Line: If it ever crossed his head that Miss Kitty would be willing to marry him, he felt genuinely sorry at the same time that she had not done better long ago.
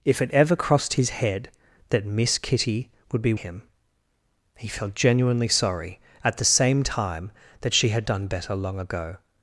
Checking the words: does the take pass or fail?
fail